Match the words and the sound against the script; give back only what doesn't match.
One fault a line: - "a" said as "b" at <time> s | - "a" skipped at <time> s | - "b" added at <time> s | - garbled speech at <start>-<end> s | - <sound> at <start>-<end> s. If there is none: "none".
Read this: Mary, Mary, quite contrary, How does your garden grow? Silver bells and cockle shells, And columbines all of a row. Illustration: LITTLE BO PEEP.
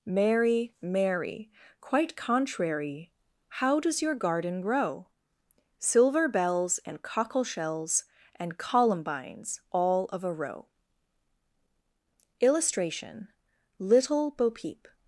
none